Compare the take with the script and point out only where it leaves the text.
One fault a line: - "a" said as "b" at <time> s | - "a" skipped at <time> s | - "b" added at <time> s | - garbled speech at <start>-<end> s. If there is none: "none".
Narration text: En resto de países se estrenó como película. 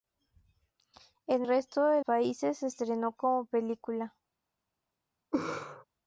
none